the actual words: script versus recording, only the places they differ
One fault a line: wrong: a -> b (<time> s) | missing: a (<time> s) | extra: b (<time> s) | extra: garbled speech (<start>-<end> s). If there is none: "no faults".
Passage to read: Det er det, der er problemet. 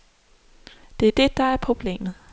no faults